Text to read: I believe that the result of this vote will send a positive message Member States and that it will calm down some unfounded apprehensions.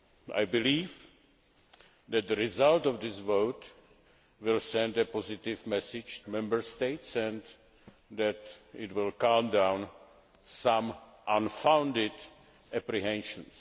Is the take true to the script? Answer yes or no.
yes